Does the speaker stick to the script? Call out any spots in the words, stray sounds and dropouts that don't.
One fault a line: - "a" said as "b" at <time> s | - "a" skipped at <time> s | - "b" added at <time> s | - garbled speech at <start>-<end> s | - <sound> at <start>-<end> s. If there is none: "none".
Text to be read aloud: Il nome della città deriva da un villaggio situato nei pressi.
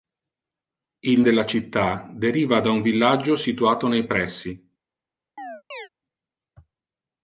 - "nome" skipped at 1.2 s
- chirp at 5.4-5.9 s